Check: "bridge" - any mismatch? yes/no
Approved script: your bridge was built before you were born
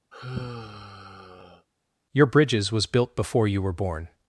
yes